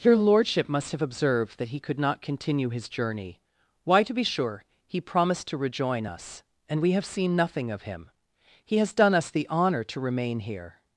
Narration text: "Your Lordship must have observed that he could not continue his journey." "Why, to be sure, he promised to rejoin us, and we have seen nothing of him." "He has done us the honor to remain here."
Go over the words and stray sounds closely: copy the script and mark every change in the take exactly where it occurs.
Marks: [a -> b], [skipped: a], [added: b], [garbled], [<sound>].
"Your Lordship must have observed that he could not continue his journey." "Why, to be sure, he promised to rejoin us, and we have seen nothing of him." "He has done us the honor to remain here."